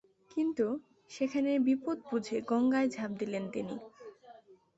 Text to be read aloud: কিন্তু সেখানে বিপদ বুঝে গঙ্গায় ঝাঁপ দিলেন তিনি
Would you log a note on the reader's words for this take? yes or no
no